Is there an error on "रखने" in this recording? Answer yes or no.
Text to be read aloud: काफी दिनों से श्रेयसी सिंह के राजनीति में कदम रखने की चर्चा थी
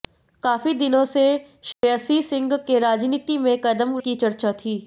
yes